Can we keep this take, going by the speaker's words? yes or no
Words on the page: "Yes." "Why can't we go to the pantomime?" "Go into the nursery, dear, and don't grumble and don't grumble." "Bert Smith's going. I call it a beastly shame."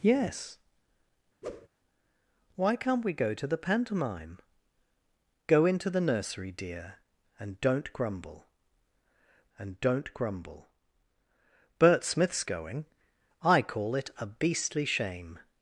yes